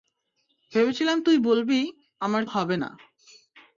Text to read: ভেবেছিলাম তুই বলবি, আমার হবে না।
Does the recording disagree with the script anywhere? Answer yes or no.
no